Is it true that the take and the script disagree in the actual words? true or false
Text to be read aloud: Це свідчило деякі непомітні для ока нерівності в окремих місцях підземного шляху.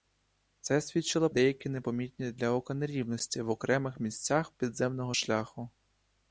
false